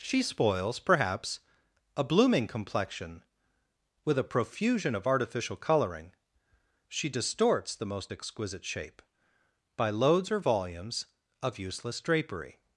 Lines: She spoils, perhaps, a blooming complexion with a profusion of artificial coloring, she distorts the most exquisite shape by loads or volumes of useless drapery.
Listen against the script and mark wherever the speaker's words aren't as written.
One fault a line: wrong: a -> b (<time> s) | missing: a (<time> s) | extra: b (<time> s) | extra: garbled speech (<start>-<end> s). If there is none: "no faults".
no faults